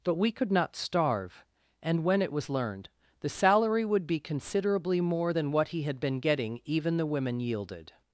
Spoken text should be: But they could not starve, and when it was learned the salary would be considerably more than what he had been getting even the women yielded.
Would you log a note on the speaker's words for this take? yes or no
yes